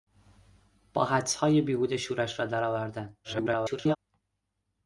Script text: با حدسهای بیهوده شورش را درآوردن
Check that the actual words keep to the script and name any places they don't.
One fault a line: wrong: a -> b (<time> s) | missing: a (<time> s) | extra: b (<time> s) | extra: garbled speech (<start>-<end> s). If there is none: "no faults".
extra: garbled speech (3.2-4.0 s)